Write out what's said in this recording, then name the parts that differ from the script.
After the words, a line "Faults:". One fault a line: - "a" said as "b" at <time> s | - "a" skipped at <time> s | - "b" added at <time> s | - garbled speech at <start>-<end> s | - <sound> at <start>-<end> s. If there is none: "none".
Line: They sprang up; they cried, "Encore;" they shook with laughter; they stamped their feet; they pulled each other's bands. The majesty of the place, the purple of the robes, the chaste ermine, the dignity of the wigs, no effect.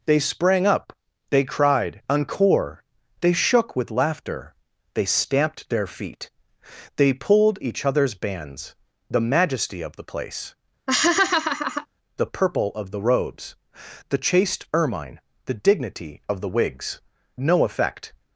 They sprang up; they cried, "Encore;" they shook with laughter; they stamped their feet; they pulled each other's bands. The majesty of the place, the purple of the robes, the chaste ermine, the dignity of the wigs, no effect.
Faults:
- laugh at 10.9-11.9 s